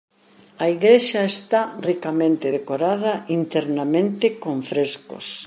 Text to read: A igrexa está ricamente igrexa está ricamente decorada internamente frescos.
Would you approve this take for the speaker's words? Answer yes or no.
no